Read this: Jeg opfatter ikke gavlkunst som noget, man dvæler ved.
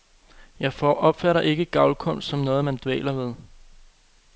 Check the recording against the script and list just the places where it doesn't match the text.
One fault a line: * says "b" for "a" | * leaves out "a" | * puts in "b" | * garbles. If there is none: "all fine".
all fine